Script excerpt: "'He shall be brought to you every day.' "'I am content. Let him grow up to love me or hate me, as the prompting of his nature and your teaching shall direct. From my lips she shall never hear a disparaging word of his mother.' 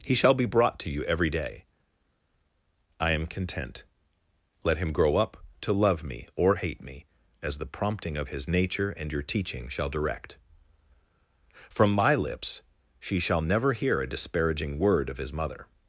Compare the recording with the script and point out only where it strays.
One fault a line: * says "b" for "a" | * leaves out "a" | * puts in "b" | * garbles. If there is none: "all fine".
all fine